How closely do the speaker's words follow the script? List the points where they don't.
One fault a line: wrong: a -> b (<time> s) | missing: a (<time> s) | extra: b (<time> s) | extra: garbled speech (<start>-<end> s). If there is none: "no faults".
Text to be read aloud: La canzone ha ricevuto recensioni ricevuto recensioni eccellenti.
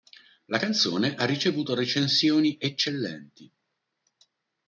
missing: ricevuto recensioni (2.5 s)